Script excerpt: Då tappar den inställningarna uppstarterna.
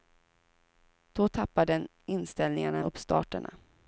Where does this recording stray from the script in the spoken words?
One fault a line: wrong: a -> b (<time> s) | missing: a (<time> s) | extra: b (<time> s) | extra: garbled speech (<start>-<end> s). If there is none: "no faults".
no faults